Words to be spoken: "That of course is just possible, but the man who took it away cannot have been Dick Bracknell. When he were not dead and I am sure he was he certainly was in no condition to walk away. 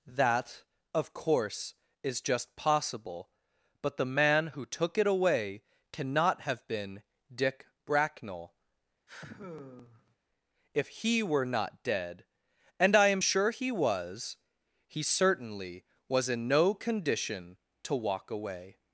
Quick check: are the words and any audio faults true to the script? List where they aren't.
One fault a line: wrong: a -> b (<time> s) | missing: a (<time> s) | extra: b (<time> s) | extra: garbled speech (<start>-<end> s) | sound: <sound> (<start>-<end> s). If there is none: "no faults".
sound: sigh (9.1-10.2 s)
wrong: When -> If (10.7 s)